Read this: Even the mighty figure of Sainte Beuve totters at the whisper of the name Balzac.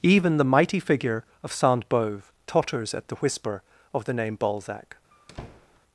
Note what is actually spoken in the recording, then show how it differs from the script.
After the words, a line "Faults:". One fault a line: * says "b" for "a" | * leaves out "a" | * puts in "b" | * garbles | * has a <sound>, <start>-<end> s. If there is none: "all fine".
Even the mighty figure of Sainte Beuve totters at the whisper of the name Balzac.
Faults:
* has a squeak, 5.1-5.8 s